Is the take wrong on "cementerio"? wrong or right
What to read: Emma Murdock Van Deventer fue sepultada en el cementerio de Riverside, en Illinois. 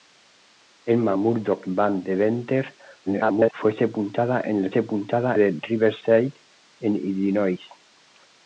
wrong